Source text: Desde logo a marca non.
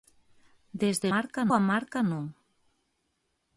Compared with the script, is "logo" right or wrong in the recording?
wrong